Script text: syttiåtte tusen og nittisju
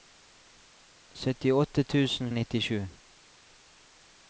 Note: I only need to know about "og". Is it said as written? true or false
true